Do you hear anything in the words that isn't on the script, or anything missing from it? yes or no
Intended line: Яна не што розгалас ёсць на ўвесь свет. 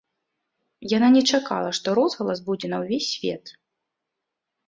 yes